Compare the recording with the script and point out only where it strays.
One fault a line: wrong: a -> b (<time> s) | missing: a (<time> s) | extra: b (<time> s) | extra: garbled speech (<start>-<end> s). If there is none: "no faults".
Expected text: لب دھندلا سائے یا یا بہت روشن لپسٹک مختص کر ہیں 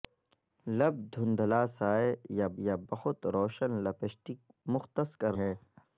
no faults